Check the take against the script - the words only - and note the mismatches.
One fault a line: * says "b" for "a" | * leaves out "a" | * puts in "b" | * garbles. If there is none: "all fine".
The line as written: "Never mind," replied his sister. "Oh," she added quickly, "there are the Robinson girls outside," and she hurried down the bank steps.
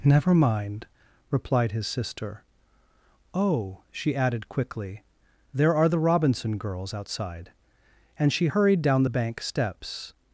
all fine